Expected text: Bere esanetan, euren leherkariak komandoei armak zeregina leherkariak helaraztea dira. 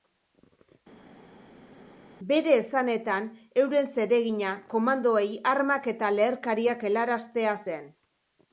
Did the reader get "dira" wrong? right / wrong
wrong